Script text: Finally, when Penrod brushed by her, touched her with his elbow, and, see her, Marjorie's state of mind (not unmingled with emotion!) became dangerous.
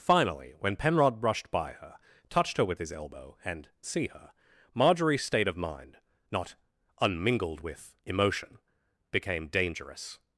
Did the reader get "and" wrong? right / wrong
right